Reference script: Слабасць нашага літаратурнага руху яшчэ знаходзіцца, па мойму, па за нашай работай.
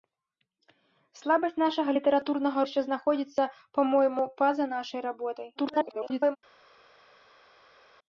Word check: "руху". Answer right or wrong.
wrong